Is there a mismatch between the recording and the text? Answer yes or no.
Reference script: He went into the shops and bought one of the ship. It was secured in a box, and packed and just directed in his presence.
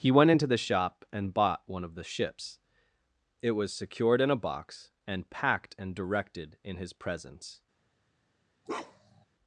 yes